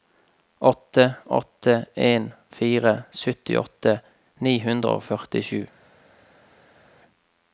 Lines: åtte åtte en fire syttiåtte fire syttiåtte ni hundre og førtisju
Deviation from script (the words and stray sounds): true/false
true